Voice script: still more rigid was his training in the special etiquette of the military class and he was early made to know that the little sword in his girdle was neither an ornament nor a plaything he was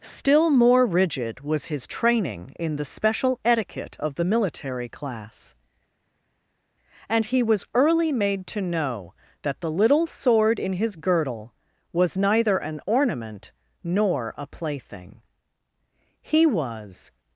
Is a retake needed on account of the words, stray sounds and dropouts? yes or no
no